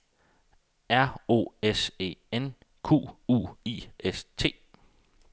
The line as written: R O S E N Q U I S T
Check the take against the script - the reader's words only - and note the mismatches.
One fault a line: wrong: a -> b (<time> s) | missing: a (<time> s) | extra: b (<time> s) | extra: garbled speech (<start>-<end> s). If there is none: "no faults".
no faults